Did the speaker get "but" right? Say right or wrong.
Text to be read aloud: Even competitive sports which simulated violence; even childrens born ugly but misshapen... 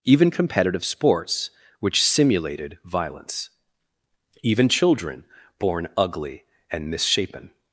wrong